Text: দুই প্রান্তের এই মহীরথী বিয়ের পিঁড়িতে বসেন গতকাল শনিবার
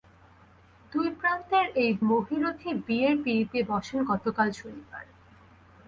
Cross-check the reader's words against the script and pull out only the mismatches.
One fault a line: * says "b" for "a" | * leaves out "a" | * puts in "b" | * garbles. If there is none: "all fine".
all fine